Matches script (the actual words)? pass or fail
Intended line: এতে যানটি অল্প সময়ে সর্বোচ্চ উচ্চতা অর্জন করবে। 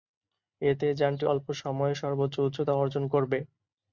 pass